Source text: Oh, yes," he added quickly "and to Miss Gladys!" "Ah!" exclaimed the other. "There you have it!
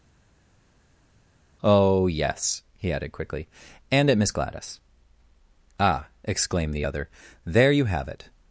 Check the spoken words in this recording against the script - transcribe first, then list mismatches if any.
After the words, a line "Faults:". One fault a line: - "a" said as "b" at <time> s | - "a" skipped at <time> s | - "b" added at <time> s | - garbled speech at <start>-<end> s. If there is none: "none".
Oh, yes," he added quickly "and at Miss Gladys!" "Ah!" exclaimed the other. "There you have it!
Faults:
- "to" said as "at" at 4.1 s